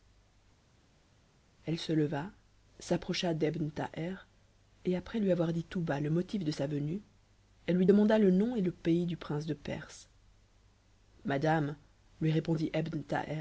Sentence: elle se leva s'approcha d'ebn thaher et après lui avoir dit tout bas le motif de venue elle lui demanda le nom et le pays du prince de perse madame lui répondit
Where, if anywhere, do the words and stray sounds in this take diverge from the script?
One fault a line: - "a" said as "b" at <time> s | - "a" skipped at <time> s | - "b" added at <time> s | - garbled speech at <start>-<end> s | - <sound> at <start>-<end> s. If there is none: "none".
- "sa" added at 6.5 s